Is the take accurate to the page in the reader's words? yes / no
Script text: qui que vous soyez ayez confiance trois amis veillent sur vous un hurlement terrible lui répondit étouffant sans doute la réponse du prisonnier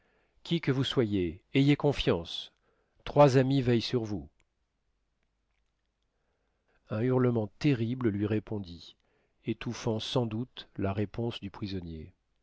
yes